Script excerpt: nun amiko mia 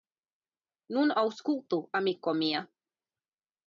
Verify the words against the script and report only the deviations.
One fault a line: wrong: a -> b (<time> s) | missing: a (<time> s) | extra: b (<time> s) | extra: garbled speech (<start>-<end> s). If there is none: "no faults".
extra: aŭskultu (1.2 s)